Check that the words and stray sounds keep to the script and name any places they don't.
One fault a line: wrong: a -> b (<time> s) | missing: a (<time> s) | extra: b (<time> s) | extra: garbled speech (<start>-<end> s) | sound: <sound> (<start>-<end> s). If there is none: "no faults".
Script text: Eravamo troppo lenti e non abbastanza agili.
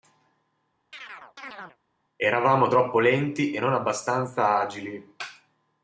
sound: chirp (0.9-1.8 s)